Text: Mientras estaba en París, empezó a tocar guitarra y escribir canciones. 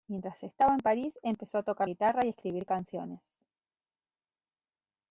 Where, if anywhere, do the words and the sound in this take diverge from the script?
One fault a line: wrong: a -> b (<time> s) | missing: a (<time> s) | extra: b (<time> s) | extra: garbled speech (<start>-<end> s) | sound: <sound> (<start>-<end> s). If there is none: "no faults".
no faults